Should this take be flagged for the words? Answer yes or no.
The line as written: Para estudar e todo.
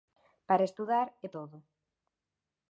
no